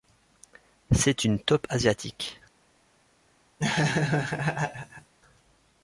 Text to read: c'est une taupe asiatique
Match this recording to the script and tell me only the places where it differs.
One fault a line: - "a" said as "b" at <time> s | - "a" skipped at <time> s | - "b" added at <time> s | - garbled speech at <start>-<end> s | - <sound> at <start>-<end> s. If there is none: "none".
- laugh at 3.6-5.1 s